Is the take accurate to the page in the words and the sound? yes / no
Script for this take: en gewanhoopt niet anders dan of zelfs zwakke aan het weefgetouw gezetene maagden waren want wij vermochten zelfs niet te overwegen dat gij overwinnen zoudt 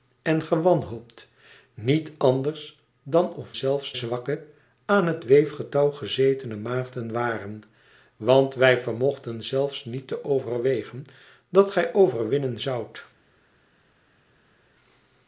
yes